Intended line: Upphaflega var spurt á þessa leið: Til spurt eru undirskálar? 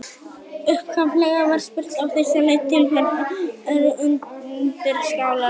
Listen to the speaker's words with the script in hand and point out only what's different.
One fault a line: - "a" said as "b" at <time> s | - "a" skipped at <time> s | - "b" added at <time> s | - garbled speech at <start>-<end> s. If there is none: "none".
- "spurt" said as "hvers" at 2.9 s